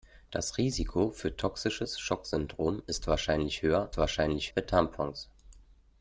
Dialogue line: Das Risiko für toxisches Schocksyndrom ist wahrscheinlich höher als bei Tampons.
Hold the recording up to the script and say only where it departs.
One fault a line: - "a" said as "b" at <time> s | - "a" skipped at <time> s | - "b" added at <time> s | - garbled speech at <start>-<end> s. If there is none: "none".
- "als" said as "wahrscheinlich" at 4.0 s